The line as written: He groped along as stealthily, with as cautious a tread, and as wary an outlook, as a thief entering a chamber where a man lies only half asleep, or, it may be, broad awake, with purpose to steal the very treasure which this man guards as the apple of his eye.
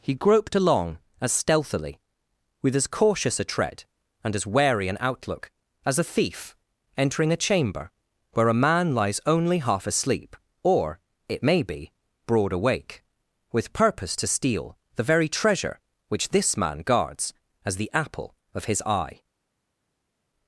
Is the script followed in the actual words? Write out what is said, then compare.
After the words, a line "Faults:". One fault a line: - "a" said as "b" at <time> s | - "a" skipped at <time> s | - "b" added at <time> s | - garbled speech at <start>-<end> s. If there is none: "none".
He groped along as stealthily, with as cautious a tread, and as wary an outlook, as a thief entering a chamber where a man lies only half asleep, or, it may be, broad awake, with purpose to steal the very treasure which this man guards as the apple of his eye.
Faults:
none